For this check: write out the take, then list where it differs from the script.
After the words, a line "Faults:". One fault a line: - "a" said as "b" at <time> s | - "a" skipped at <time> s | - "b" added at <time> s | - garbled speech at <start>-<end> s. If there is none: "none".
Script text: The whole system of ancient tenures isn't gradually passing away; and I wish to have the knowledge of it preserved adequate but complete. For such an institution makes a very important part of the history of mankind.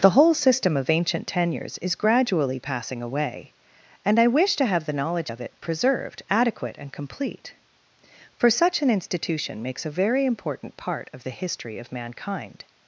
The whole system of ancient tenures is gradually passing away; and I wish to have the knowledge of it preserved adequate and complete. For such an institution makes a very important part of the history of mankind.
Faults:
- "isn't" said as "is" at 1.8 s
- "but" said as "and" at 6.8 s